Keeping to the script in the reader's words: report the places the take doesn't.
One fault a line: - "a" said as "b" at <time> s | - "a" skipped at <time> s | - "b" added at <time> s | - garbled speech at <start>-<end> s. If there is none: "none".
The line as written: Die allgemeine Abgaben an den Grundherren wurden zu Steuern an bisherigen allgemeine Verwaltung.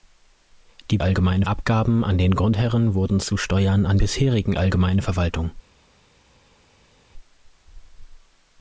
none